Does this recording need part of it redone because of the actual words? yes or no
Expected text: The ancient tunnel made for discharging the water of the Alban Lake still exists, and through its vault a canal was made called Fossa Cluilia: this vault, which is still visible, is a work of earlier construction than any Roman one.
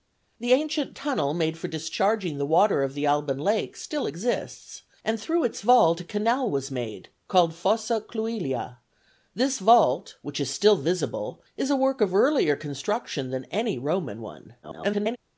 yes